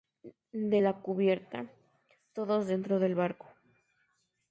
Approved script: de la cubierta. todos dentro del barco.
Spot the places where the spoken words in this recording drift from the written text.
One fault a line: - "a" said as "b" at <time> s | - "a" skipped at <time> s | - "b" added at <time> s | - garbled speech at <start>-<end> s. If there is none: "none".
none